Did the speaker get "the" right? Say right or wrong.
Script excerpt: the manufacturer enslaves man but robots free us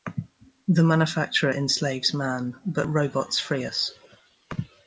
right